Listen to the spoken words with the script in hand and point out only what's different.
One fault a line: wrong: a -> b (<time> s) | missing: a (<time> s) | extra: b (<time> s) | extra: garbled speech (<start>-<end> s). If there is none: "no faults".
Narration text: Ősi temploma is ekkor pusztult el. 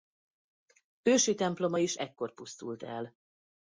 no faults